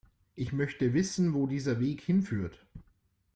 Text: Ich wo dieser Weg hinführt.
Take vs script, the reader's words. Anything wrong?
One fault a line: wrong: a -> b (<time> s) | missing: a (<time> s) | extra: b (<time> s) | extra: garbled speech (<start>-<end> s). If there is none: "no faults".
extra: möchte wissen (0.5 s)